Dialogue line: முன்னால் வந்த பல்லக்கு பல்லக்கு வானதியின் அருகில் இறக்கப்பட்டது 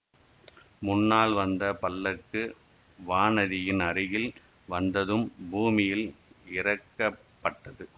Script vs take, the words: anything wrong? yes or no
yes